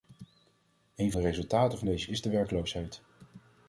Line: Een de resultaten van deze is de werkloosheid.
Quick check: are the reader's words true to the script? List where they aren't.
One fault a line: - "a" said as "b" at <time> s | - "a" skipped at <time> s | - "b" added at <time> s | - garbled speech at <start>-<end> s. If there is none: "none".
none